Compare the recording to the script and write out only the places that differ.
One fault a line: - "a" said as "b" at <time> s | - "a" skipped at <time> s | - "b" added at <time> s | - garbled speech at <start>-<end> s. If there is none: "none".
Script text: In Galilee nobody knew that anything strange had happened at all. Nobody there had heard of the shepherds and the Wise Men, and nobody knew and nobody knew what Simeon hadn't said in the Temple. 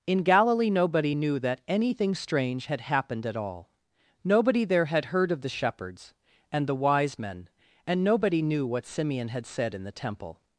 - "and nobody knew" skipped at 8.7 s
- "hadn't" said as "had" at 9.3 s